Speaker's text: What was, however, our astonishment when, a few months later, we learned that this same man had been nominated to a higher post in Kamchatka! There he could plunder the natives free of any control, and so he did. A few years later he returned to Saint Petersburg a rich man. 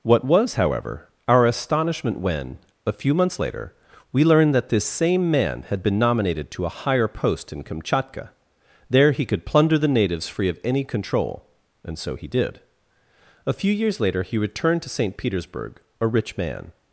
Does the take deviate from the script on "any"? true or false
false